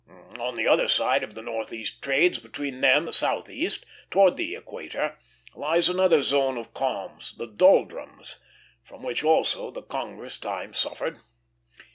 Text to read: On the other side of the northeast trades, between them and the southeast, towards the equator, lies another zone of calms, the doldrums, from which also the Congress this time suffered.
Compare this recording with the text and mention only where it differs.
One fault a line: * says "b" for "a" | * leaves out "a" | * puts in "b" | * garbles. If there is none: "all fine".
* leaves out "and"
* leaves out "this"